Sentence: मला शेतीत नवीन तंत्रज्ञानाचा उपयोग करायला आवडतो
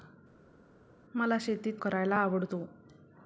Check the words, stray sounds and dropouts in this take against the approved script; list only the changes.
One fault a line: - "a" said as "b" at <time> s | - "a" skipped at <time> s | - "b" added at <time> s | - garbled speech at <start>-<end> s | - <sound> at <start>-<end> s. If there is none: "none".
- "नवीन तंत्रज्ञानाचा उपयोग" skipped at 1.8 s